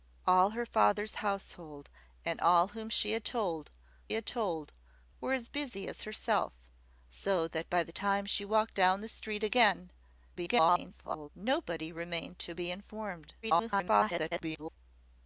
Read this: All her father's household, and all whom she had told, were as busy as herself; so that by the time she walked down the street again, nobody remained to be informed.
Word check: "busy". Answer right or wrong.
right